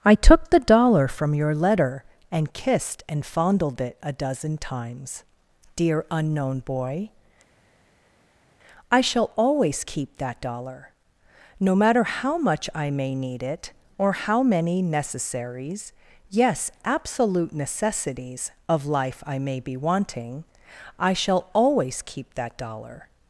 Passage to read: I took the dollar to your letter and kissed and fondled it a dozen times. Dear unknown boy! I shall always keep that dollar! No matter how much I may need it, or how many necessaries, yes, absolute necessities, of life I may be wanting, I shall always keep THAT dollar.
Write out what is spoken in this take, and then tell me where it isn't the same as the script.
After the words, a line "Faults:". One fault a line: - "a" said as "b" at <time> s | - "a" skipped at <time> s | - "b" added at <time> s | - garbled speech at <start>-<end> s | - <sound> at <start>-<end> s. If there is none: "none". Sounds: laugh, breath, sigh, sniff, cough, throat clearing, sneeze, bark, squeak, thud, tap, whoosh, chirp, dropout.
I took the dollar from your letter and kissed and fondled it a dozen times. Dear unknown boy! I shall always keep that dollar! No matter how much I may need it, or how many necessaries, yes, absolute necessities, of life I may be wanting, I shall always keep THAT dollar.
Faults:
- "to" said as "from" at 1.1 s